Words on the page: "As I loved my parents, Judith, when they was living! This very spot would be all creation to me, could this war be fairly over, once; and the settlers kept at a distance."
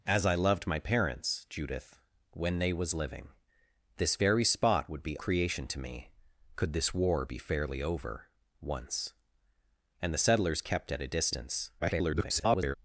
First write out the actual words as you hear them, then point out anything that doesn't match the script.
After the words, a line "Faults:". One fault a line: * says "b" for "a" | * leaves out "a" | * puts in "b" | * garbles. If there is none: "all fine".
"As I loved my parents, Judith, when they was living! This very spot would be creation to me, could this war be fairly over, once; and the settlers kept at a distance." [garbled]
Faults:
* leaves out "all"
* garbles